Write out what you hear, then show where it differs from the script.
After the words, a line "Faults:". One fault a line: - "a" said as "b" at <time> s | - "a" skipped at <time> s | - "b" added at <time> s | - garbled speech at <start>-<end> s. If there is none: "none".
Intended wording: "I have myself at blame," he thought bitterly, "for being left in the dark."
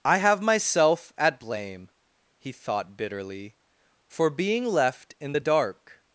"I have myself at blame," he thought bitterly, "for being left in the dark."
Faults:
none